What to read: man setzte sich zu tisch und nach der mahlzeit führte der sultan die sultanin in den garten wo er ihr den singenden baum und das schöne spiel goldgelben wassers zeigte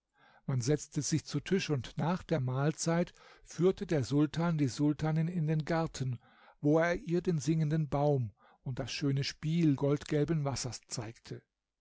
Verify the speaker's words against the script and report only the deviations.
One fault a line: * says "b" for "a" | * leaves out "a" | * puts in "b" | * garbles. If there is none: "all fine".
all fine